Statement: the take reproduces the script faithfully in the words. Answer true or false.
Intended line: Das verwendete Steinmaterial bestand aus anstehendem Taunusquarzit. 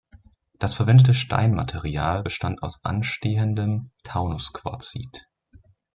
true